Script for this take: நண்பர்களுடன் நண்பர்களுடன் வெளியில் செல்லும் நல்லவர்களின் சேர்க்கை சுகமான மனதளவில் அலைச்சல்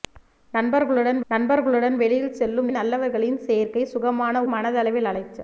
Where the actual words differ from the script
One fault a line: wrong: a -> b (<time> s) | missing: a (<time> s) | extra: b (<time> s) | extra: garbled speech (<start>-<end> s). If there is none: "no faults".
no faults